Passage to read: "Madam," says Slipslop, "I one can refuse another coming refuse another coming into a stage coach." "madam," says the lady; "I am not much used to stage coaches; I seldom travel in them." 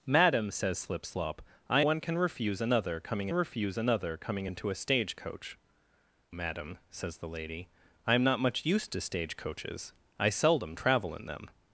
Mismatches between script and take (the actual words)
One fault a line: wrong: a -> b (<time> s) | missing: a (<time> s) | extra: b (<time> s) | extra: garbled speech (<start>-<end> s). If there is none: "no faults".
no faults